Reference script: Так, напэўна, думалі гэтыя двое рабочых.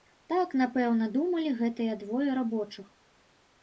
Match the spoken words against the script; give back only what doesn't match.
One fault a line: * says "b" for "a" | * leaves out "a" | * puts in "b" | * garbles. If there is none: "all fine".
all fine